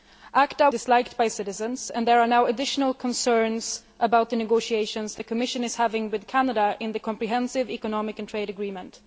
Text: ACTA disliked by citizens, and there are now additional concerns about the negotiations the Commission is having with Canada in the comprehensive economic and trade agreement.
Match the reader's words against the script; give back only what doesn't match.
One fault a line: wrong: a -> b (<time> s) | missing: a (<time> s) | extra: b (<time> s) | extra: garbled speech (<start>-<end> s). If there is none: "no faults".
no faults